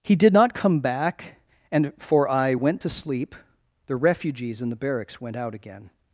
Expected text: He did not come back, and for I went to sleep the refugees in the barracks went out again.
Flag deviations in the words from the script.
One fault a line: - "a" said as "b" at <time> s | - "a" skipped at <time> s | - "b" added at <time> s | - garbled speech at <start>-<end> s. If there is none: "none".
none